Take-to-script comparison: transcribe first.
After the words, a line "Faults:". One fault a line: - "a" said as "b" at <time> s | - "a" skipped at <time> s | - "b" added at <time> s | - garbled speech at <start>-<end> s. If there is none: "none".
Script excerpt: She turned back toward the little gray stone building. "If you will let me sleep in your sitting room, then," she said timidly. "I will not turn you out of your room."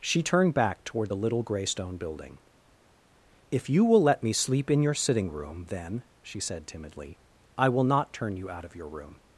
She turned back toward the little gray stone building. "If you will let me sleep in your sitting room, then," she said timidly. "I will not turn you out of your room."
Faults:
none